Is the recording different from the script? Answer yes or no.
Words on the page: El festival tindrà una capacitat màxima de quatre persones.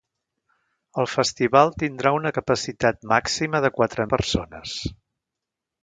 no